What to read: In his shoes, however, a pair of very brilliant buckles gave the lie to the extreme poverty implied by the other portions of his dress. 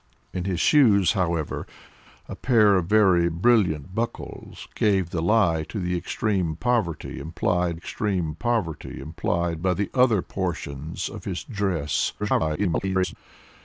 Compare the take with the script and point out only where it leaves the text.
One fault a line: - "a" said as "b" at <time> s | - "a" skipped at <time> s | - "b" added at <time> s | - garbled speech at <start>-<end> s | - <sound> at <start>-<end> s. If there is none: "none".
- "extreme poverty implied" added at 7.7 s
- garbled speech at 12.2-13.2 s